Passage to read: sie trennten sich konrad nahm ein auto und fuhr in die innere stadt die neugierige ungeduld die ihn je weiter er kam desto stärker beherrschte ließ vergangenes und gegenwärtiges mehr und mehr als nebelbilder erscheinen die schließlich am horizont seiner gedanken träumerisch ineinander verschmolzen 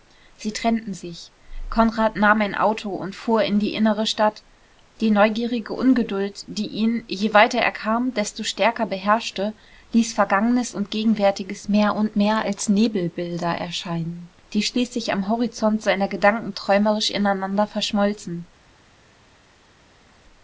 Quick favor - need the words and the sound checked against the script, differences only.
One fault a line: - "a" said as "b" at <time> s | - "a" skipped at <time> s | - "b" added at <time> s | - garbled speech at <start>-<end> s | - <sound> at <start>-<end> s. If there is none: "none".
none